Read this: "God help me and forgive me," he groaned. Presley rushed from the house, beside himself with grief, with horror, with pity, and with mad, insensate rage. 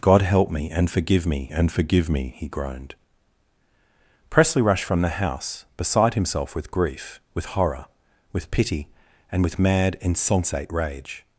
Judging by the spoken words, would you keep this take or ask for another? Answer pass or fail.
fail